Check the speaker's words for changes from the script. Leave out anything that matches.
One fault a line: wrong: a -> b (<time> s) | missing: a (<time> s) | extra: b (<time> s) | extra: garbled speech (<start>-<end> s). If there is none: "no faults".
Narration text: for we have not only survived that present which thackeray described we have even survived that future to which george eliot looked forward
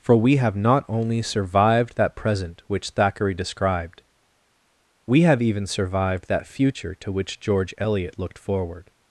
no faults